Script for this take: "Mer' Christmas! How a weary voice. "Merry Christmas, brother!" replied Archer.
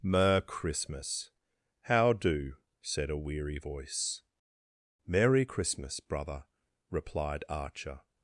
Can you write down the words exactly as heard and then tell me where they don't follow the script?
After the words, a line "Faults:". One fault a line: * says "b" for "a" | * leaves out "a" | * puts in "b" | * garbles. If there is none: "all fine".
"Mer' Christmas! How do?" said a weary voice. "Merry Christmas, brother!" replied Archer.
Faults:
* puts in "do said"